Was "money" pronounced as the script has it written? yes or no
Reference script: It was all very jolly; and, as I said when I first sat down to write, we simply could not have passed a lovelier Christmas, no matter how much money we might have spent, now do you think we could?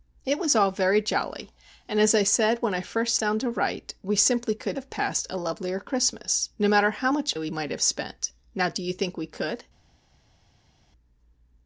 no